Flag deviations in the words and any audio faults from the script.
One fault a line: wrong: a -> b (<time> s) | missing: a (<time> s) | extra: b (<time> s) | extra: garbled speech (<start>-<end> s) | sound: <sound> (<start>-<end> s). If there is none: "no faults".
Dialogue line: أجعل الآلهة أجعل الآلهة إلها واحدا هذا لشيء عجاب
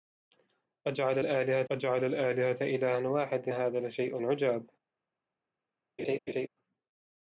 sound: laugh (6.0-6.5 s)